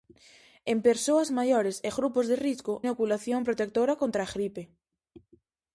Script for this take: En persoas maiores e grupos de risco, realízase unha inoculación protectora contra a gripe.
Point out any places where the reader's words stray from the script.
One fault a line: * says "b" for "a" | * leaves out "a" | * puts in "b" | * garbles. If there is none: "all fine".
* leaves out "realízase unha"